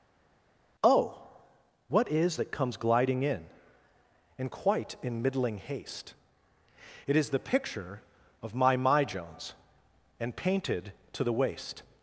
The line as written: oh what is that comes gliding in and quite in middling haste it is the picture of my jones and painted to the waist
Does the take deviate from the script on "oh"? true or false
false